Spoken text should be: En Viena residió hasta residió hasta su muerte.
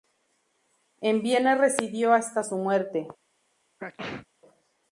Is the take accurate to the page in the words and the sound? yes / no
no